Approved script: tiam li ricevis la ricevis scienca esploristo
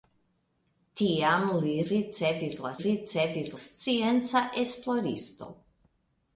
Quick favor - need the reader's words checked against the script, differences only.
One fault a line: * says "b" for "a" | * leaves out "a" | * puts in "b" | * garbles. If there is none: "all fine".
all fine